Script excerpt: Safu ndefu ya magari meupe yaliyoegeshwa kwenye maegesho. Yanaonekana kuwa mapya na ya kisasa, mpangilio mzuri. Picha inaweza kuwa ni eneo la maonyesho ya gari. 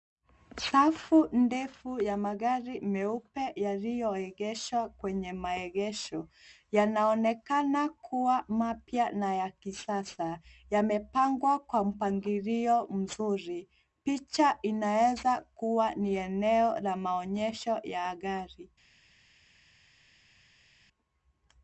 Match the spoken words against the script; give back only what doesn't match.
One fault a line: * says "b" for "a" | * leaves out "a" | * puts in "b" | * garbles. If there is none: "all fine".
* puts in "yamepangwa kwa"